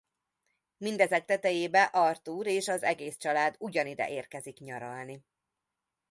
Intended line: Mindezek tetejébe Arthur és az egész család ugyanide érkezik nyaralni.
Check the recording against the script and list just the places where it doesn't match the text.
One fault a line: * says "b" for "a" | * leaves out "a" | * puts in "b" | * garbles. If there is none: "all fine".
all fine